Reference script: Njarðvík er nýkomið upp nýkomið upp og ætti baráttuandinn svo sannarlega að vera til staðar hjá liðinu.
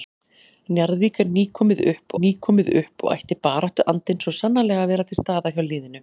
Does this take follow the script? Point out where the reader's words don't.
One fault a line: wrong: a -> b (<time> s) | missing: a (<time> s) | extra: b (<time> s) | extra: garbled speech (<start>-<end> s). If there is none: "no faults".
no faults